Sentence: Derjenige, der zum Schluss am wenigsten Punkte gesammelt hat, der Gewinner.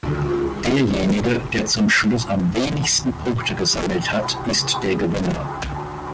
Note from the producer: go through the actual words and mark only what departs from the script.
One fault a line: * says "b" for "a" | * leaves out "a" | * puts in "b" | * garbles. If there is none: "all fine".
* puts in "ist"